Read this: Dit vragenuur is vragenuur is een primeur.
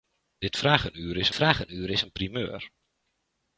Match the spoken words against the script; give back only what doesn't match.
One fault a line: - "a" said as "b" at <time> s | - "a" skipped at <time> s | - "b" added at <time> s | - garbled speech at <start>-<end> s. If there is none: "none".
none